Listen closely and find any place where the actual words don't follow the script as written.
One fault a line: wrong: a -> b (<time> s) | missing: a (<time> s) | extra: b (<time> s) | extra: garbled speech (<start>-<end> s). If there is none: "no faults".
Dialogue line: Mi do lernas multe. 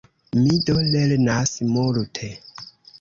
no faults